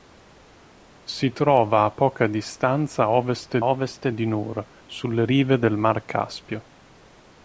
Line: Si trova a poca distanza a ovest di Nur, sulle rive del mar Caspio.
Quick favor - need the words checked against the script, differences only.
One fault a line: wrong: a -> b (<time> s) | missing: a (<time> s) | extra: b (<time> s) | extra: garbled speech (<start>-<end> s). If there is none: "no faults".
extra: ovest (3.6 s)